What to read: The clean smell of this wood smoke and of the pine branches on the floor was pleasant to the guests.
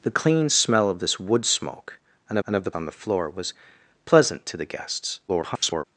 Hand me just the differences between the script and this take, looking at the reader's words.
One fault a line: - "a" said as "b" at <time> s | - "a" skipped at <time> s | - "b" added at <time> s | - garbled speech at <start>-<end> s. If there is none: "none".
- "and" added at 2.5 s
- "pine branches" skipped at 2.7 s
- garbled speech at 5.3-5.8 s